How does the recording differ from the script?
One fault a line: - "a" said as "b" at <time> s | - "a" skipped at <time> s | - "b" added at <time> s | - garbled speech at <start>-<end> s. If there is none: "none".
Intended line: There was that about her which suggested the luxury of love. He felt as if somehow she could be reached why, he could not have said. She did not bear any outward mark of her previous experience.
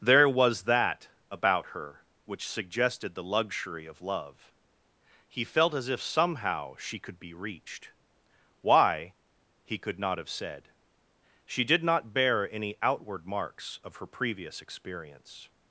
- "mark" said as "marks" at 13.2 s